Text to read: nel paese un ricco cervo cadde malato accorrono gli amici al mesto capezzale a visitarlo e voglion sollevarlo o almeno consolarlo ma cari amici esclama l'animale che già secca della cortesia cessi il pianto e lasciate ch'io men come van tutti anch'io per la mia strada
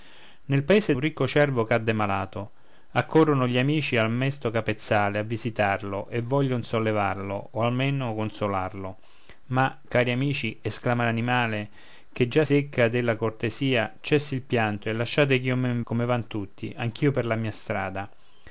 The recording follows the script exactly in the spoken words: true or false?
true